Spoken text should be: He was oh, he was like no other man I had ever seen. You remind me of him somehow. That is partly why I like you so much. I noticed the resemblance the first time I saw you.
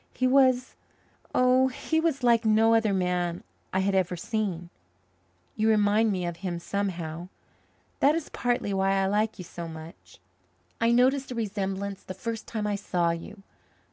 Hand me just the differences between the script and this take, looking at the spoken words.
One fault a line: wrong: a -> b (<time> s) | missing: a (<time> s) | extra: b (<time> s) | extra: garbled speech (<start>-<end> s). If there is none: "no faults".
no faults